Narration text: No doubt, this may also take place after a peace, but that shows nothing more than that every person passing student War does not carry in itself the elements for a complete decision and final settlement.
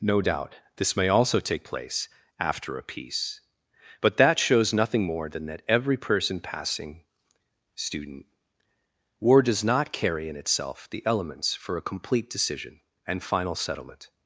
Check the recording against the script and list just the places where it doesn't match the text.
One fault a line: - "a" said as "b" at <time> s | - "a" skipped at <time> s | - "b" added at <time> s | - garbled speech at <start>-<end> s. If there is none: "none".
none